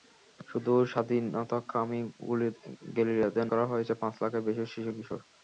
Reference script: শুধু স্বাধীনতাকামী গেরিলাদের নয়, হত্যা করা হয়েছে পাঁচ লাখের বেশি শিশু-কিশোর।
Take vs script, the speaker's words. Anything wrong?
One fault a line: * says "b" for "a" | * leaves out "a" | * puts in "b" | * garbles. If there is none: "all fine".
* leaves out "নয় হত্যা"